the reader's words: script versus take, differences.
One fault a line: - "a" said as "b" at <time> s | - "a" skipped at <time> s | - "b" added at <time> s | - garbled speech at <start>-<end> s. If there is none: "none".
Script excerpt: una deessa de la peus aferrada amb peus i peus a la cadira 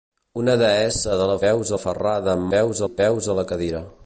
none